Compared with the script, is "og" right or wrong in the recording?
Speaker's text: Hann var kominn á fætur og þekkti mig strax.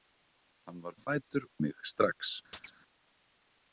wrong